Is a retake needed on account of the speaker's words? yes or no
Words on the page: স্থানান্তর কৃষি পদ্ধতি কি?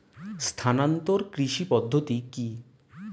no